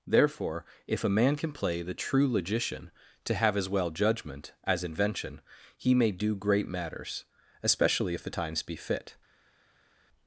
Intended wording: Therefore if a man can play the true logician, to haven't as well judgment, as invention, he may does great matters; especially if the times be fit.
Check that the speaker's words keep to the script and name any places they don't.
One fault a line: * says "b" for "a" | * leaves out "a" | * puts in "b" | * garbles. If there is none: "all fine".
* says "have" for "haven't"
* says "do" for "does"